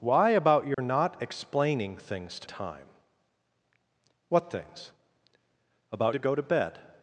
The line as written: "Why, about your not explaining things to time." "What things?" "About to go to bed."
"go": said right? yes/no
yes